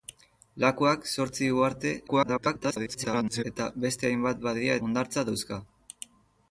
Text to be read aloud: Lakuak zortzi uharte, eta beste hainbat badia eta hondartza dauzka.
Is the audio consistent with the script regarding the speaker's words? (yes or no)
no